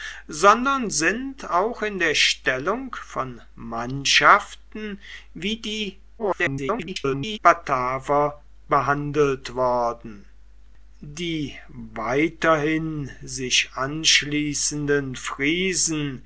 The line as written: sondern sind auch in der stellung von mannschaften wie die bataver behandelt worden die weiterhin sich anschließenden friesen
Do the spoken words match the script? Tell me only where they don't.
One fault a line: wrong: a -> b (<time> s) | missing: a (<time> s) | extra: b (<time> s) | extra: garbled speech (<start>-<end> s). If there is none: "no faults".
extra: garbled speech (6.2-7.4 s)